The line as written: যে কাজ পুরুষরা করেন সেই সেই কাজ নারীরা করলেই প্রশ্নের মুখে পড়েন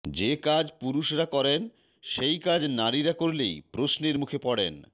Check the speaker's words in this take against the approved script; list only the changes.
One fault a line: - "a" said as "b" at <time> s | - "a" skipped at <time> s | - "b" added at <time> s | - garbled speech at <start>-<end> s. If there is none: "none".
- "সেই" skipped at 2.4 s